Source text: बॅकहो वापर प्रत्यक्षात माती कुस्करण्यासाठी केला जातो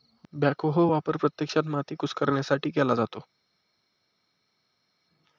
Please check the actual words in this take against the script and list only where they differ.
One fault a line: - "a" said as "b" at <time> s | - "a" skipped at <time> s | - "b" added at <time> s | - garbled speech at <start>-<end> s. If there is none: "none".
none